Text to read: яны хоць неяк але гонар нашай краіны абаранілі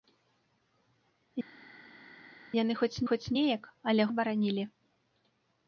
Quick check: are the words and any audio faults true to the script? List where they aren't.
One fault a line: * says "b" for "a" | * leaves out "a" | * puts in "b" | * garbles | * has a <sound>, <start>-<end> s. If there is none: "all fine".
* puts in "хоць"
* leaves out "гонар нашай краіны"